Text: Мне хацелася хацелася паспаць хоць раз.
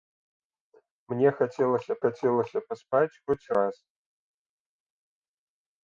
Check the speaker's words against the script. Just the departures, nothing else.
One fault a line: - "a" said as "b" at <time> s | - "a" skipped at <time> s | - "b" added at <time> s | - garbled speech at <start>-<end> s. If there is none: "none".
none